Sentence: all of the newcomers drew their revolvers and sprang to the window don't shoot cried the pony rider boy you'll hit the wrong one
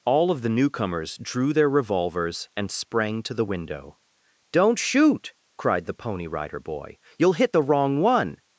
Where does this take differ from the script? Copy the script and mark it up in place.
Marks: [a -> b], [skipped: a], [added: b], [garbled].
all of the newcomers drew their revolvers and sprang to the window don't shoot cried the pony rider boy you'll hit the wrong one